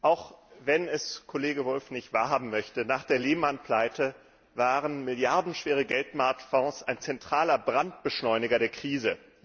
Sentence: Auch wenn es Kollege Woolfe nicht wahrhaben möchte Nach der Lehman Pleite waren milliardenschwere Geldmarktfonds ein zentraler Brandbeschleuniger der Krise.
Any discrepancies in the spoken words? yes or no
no